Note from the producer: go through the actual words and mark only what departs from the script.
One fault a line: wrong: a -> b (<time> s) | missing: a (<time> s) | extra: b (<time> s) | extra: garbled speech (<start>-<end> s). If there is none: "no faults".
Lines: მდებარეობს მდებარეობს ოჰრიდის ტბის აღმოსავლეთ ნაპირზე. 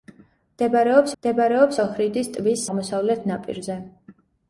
no faults